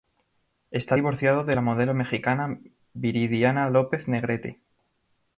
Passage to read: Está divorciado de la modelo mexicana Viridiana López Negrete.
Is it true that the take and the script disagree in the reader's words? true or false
false